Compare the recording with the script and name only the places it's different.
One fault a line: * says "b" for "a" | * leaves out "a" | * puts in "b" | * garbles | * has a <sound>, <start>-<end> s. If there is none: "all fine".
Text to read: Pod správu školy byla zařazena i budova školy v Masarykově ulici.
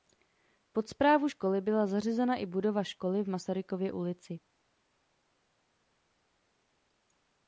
all fine